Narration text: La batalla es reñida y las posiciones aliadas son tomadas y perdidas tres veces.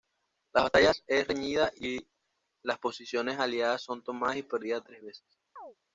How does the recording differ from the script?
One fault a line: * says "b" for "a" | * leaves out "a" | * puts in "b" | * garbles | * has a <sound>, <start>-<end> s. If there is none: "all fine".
* has a chirp, 5.6-5.8 s